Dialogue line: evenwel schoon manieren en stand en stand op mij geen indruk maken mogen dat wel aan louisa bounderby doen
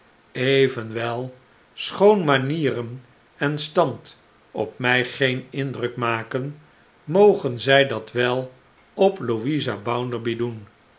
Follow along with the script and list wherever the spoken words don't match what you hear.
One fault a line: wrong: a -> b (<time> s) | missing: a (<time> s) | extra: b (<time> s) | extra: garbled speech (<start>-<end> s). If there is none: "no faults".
missing: en stand (4.2 s)
extra: zij (7.6 s)
wrong: aan -> op (8.9 s)